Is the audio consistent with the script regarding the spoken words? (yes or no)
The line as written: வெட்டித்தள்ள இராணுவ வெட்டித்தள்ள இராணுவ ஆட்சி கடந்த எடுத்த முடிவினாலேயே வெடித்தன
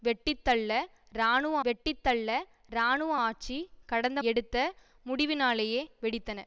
yes